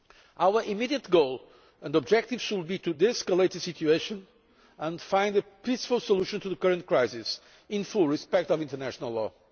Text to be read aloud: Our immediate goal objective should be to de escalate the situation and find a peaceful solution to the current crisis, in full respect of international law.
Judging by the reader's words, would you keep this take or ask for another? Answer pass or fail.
fail